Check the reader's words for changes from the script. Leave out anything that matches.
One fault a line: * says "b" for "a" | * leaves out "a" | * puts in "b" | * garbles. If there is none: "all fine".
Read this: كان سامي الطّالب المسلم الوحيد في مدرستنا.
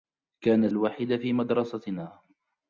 * leaves out "سامي الطّالب المسلم"